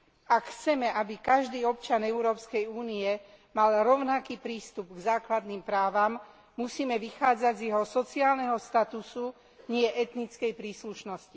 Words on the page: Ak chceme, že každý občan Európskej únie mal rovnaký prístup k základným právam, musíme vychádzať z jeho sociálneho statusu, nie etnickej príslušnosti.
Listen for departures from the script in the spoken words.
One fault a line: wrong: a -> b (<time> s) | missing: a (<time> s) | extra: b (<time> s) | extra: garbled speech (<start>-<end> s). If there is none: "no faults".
wrong: že -> aby (0.9 s)